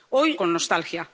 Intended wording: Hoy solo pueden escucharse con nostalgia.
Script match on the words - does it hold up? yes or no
no